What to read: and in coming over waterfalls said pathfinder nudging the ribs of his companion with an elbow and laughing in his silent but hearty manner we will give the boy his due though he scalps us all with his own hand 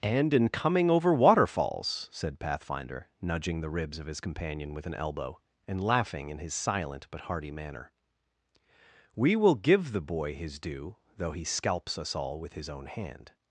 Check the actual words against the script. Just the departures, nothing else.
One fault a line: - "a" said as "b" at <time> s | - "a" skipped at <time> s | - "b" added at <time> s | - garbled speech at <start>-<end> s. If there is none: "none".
none